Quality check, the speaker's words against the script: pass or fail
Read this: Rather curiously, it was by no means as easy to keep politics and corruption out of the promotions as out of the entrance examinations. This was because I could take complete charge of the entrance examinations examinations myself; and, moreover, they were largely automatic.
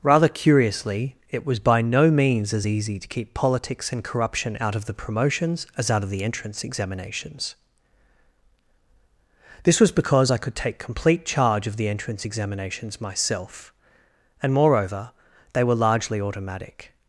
fail